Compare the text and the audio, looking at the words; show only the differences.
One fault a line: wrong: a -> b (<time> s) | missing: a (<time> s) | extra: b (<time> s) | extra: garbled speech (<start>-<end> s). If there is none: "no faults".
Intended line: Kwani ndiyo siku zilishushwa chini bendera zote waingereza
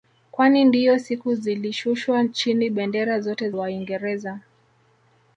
no faults